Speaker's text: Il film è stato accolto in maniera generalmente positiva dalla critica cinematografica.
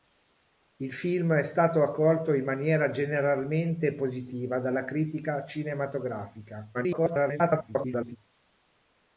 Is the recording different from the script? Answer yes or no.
yes